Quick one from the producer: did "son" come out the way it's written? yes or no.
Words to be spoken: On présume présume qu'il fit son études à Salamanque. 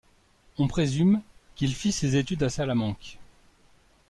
no